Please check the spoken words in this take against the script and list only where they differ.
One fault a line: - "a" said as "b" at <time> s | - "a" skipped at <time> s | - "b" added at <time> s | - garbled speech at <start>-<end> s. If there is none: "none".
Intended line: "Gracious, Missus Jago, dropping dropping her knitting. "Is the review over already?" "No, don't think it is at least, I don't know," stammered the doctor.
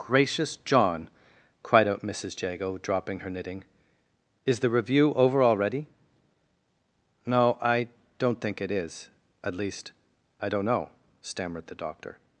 - "John cried out" added at 0.6 s
- "dropping" skipped at 3.2 s
- "I" added at 7.6 s